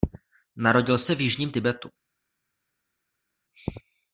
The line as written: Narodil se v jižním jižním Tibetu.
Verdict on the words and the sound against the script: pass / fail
fail